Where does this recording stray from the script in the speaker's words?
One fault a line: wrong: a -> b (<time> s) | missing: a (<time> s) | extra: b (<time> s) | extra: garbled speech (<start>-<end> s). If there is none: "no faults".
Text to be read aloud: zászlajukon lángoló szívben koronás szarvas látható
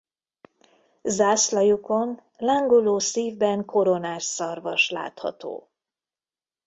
no faults